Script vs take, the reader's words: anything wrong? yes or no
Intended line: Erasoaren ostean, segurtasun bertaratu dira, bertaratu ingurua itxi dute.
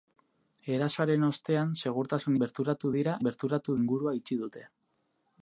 no